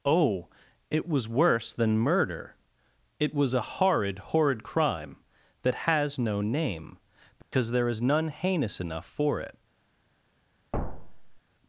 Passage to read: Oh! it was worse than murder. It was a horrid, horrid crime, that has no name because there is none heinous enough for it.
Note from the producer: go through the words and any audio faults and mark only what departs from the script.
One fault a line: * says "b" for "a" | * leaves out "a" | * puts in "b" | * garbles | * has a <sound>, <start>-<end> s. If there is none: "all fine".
* has a dropout, 7.4-7.5 s
* has a thud, 10.7-11.4 s